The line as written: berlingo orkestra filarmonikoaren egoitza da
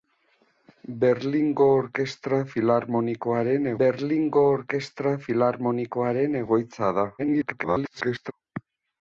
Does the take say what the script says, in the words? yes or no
no